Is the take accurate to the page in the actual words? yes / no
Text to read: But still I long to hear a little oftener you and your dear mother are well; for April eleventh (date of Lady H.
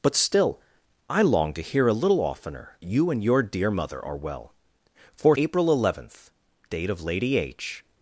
yes